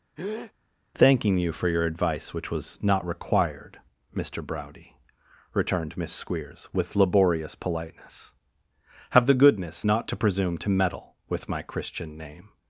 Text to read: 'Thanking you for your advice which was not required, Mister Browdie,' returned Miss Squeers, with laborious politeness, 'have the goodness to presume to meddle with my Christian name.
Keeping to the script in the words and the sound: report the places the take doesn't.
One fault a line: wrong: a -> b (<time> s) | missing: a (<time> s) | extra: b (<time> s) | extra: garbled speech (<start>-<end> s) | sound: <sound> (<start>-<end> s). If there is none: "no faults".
sound: breath (0.2-0.5 s)
extra: not (9.8 s)